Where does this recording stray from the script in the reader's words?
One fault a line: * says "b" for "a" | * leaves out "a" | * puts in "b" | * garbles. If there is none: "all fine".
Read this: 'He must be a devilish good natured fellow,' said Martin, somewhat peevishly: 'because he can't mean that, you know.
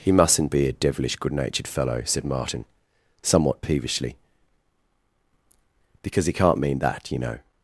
* says "mustn't" for "must"